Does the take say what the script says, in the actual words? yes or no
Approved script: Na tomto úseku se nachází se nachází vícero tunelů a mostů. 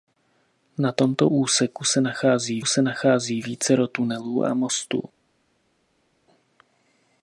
yes